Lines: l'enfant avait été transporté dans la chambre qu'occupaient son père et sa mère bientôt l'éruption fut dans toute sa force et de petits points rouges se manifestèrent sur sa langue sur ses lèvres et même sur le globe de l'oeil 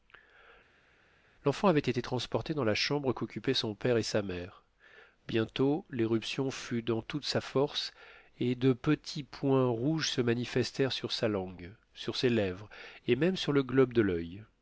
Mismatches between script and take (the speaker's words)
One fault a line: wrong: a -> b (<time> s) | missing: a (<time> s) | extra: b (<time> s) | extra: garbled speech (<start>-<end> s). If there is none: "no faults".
no faults